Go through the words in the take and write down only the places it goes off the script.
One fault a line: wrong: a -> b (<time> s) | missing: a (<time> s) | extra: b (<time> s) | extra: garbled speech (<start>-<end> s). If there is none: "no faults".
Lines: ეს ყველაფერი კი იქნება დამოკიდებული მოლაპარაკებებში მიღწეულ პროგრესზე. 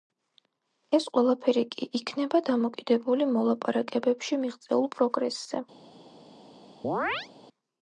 no faults